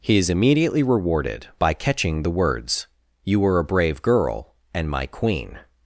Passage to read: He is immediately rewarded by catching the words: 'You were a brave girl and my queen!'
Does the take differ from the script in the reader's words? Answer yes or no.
no